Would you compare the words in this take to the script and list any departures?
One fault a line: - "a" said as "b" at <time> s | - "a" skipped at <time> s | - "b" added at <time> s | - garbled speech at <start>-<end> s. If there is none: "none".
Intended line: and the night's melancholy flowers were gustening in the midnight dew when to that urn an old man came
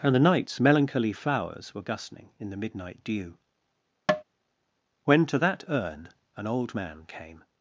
none